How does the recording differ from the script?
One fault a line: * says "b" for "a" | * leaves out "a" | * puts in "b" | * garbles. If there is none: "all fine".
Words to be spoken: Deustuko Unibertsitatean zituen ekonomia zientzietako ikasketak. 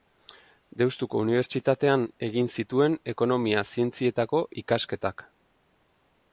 * puts in "egin"